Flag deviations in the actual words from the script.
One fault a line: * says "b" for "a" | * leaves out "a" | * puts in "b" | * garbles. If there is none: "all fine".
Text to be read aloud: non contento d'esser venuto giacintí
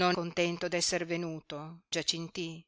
all fine